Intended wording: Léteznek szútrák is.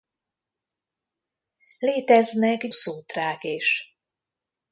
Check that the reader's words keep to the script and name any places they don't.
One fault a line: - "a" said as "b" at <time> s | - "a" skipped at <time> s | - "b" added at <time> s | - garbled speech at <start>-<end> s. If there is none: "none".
none